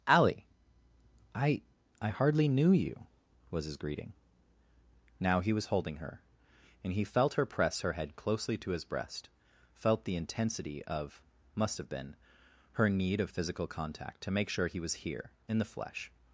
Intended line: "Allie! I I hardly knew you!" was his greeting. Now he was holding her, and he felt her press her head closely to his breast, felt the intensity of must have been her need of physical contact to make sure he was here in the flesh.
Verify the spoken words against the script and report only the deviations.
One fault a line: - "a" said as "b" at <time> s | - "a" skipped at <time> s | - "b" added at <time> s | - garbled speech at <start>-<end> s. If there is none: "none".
none